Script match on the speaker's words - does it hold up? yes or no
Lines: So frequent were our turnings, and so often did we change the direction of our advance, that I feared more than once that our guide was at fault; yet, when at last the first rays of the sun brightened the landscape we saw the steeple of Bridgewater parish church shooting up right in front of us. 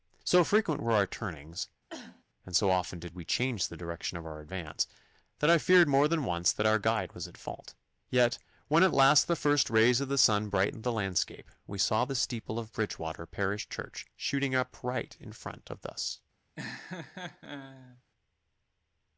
yes